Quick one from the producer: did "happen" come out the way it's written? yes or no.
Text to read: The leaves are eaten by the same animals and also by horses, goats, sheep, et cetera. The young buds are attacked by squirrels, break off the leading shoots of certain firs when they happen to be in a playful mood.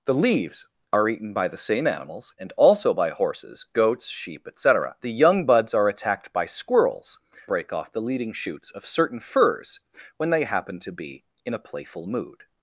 yes